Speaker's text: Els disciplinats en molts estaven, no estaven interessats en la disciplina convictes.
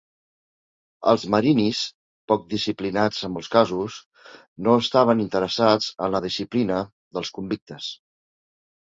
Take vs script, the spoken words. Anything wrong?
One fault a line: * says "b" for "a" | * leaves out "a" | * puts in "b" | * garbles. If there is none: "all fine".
* puts in "marinis poc"
* says "casos" for "estaven"
* puts in "dels"